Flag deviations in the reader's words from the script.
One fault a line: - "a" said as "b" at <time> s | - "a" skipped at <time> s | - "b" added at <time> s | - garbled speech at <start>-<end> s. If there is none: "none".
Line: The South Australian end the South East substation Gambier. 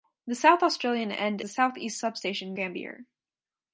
none